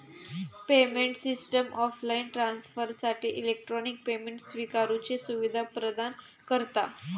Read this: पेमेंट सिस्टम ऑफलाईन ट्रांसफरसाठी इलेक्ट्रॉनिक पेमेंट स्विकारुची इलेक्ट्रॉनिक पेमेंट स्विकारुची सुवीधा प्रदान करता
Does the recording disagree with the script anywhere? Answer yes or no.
yes